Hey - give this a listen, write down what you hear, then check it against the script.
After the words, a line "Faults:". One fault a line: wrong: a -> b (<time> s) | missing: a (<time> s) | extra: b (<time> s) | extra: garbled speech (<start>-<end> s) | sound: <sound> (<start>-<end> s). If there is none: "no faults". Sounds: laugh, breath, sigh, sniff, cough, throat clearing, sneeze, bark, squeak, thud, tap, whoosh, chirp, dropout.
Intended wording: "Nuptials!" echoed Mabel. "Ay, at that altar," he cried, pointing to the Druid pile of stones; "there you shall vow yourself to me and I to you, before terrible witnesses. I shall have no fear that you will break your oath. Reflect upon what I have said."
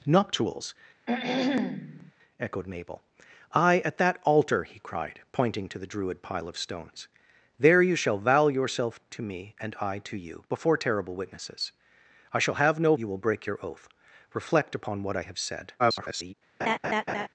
"Nuptials!" echoed Mabel. "Ay, at that altar," he cried, pointing to the Druid pile of stones; "there you shall vow yourself to me and I to you, before terrible witnesses. I shall have no you will break your oath. Reflect upon what I have said." [garbled]
Faults:
sound: throat clearing (1.1-2.1 s)
missing: fear that (13.0 s)
extra: garbled speech (15.8-16.3 s)
sound: laugh (16.6-17.3 s)